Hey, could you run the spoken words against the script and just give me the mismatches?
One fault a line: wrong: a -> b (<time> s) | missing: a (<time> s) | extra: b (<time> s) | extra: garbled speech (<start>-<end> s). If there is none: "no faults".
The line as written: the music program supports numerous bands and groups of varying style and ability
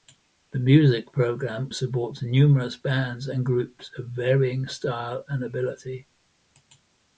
no faults